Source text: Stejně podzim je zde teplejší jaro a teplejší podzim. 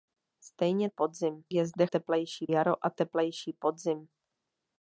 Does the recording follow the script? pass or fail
pass